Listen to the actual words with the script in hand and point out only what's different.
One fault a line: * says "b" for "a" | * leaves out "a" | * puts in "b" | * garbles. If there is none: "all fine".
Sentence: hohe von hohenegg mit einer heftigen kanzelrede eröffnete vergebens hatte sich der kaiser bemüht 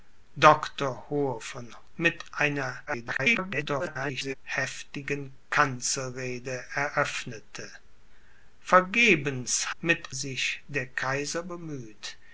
* leaves out "hohenegg"
* garbles
* says "mit" for "hatte"